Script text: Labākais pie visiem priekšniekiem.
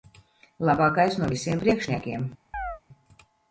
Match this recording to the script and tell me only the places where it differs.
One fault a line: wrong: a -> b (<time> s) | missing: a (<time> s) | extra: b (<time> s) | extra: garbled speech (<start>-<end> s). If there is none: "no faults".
wrong: pie -> no (1.2 s)